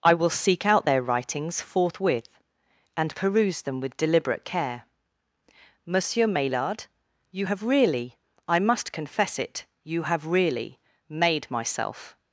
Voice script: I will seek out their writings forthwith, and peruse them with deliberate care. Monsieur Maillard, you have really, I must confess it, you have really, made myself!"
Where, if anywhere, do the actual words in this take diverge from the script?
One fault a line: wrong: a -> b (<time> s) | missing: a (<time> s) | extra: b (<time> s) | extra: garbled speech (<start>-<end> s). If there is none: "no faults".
no faults